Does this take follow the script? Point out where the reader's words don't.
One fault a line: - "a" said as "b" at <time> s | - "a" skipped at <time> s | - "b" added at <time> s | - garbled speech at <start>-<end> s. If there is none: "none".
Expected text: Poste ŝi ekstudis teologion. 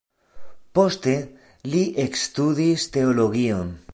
- "ŝi" said as "li" at 1.7 s